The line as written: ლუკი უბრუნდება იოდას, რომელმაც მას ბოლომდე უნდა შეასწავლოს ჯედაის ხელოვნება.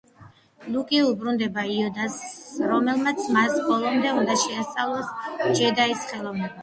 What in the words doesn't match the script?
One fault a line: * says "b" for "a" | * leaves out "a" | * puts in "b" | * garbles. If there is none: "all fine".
all fine